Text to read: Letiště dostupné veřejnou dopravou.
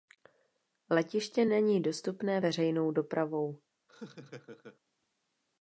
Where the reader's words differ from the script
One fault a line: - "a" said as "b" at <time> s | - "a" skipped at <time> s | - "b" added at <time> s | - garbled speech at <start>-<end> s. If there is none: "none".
- "není" added at 1.4 s